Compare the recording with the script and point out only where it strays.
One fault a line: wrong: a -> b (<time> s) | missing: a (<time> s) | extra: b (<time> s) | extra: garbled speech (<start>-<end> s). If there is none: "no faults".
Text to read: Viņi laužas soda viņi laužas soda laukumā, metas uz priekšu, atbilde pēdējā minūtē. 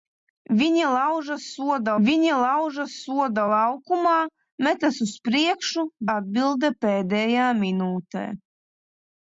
no faults